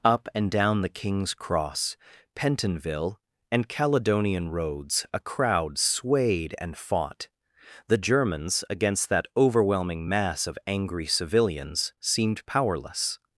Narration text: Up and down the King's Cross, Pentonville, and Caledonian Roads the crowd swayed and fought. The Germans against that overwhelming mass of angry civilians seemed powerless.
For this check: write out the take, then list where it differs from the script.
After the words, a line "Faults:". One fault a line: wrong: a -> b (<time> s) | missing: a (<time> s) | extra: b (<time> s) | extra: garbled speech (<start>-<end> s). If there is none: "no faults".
Up and down the King's Cross, Pentonville, and Caledonian Roads a crowd swayed and fought. The Germans against that overwhelming mass of angry civilians seemed powerless.
Faults:
wrong: the -> a (5.1 s)